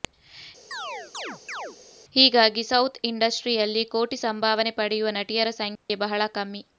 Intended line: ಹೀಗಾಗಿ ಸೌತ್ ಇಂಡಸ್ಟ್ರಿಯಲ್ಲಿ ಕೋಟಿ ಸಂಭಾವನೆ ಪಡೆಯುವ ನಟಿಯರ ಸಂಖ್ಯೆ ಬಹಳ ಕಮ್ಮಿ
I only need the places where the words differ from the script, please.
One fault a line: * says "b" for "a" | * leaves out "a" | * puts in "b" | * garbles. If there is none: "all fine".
all fine